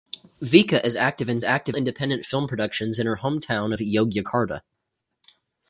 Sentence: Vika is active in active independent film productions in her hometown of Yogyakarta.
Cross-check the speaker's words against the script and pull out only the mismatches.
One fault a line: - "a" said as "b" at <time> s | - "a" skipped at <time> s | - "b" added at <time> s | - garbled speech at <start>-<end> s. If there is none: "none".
none